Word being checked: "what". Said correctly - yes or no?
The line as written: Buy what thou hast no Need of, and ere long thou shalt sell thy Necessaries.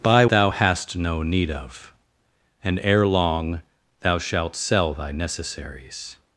no